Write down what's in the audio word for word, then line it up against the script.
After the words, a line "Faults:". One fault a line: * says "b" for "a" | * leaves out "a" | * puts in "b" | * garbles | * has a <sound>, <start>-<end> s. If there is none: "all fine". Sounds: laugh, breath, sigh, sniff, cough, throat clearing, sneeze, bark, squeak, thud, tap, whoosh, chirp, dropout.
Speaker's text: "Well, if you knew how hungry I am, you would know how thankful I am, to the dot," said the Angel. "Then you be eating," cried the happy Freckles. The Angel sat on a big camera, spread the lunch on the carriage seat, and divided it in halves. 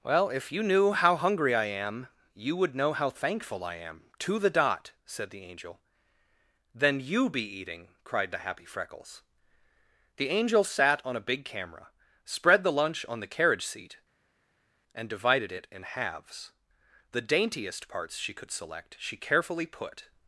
"Well, if you knew how hungry I am, you would know how thankful I am, to the dot," said the Angel. "Then you be eating," cried the happy Freckles. The Angel sat on a big camera, spread the lunch on the carriage seat, and divided it in halves. The daintiest parts she could select she carefully put
Faults:
* puts in "The daintiest parts she could select she carefully put"